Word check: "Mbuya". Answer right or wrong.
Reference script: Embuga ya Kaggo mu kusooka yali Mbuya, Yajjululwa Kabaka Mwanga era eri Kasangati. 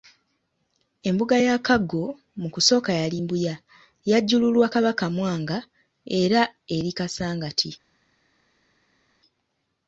right